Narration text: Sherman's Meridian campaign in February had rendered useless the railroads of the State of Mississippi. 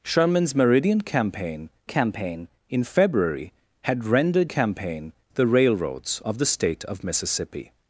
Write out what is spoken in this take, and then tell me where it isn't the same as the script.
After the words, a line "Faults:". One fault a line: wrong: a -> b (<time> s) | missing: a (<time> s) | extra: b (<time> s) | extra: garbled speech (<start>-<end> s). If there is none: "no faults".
Sherman's Meridian campaign campaign in February had rendered campaign the railroads of the State of Mississippi.
Faults:
extra: campaign (1.8 s)
wrong: useless -> campaign (4.4 s)